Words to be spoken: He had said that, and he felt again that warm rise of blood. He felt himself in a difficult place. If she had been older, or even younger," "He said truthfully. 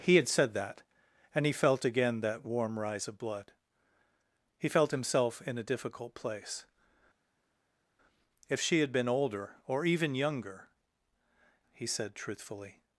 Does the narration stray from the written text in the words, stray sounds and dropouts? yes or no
no